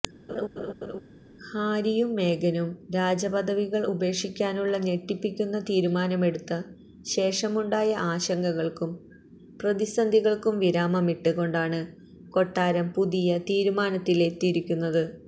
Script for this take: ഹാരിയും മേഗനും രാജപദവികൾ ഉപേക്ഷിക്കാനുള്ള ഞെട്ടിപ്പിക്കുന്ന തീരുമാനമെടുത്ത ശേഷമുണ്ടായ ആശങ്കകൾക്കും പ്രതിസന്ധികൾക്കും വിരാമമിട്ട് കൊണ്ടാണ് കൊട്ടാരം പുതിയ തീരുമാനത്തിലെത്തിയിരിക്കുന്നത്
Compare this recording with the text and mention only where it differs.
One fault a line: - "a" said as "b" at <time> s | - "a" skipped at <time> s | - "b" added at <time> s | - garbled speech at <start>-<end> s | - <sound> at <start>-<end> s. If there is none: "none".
- laugh at 0.3-1.0 s